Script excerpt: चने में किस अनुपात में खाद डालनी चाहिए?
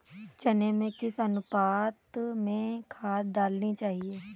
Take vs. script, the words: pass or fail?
pass